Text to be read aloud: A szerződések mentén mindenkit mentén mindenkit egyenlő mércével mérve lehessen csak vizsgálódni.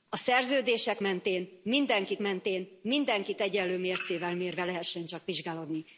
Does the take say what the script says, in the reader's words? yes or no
yes